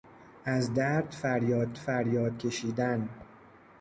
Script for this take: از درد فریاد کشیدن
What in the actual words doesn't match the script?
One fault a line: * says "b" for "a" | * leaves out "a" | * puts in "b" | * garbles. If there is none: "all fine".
* puts in "فریاد"